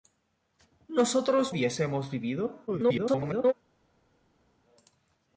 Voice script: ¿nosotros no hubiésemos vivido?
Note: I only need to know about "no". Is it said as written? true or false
false